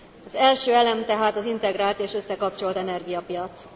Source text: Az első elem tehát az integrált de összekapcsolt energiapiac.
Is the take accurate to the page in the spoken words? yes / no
no